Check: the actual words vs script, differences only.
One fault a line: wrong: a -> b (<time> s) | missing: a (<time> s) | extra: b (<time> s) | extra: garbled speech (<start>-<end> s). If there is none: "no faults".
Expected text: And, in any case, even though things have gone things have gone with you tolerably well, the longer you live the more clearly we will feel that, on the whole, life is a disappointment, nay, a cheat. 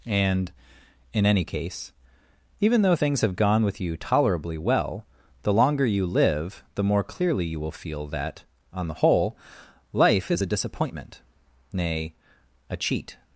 missing: things have gone (3.6 s)
wrong: we -> you (7.4 s)